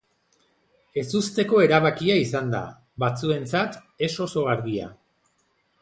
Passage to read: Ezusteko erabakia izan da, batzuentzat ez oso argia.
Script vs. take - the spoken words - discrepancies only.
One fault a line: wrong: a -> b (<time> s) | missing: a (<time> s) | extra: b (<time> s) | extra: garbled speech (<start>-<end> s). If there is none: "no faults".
no faults